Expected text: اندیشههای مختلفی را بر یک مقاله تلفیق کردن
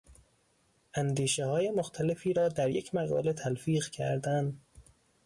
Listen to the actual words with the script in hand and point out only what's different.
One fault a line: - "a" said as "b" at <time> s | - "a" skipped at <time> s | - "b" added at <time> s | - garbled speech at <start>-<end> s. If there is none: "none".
- "بر" said as "در" at 2.5 s